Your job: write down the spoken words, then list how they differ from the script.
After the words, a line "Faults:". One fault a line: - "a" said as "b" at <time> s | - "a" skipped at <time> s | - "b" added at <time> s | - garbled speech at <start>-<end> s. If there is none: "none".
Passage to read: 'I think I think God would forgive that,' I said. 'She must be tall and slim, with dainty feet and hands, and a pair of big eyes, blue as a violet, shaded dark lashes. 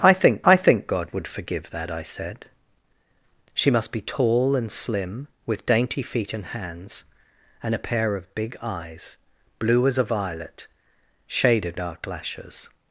'I think I think God would forgive that,' I said. 'She must be tall and slim, with dainty feet and hands, and a pair of big eyes, blue as a violet, shaded dark lashes.
Faults:
none